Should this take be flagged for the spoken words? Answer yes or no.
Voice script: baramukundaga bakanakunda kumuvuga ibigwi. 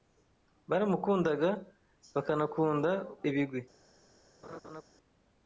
yes